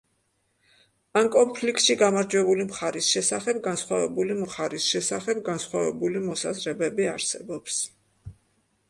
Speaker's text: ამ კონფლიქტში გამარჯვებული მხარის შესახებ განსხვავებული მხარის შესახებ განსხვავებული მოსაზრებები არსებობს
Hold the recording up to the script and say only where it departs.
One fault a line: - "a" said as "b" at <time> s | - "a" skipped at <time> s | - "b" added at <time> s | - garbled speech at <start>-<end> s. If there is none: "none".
none